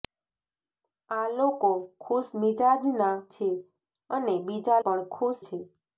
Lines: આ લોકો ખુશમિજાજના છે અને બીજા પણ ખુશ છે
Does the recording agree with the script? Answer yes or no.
yes